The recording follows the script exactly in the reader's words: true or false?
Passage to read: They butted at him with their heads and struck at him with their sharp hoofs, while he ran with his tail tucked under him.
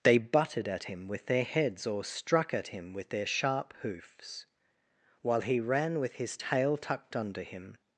false